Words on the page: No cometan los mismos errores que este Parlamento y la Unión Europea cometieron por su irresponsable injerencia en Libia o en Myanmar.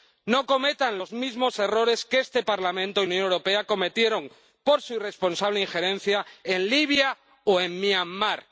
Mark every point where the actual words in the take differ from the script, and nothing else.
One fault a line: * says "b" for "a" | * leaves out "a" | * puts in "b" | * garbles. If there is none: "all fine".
* leaves out "la"